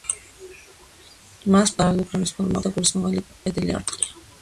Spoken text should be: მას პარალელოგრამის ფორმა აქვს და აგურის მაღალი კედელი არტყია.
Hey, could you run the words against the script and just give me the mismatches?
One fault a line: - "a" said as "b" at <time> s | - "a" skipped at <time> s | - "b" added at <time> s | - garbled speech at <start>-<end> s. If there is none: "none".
none